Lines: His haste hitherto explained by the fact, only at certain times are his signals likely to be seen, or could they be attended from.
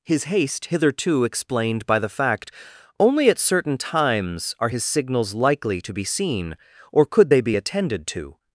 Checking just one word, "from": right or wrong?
wrong